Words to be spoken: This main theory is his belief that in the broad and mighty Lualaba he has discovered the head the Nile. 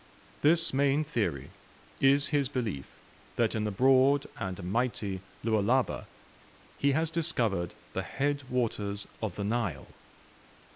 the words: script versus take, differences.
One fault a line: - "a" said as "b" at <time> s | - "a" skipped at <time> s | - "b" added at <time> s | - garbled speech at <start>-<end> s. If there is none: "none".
- "waters of" added at 8.5 s